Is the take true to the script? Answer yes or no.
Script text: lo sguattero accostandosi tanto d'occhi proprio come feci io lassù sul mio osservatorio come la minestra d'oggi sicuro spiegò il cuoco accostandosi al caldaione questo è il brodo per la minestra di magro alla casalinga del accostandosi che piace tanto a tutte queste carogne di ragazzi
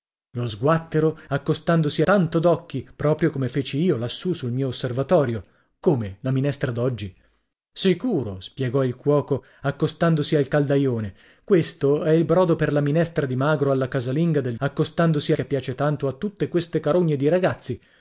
yes